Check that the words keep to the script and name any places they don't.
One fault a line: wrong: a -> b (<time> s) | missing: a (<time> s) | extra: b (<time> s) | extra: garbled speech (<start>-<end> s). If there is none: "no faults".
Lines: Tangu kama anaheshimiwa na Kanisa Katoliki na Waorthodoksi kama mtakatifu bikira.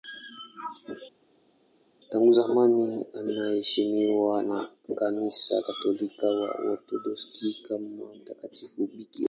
wrong: kama -> zamani (2.3 s)